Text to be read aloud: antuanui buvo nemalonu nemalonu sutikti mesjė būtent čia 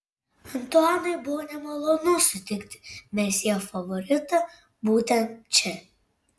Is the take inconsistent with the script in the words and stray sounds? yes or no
yes